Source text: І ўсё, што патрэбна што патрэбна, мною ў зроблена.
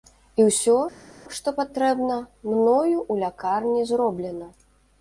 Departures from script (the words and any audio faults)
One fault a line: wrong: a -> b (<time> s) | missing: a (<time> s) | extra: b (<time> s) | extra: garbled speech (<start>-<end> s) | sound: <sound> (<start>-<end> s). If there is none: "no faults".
missing: што патрэбна (2.2 s)
extra: лякарні (3.3 s)